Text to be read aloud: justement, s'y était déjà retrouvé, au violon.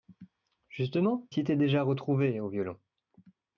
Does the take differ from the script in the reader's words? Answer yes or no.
no